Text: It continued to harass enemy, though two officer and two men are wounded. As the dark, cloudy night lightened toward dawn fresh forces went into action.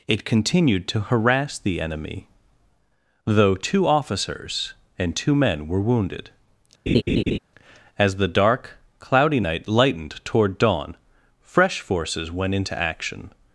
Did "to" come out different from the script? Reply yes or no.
no